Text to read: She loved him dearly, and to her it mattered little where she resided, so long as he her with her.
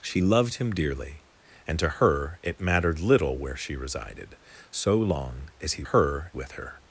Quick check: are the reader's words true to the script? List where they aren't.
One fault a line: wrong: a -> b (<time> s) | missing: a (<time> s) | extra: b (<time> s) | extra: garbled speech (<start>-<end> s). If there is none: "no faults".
no faults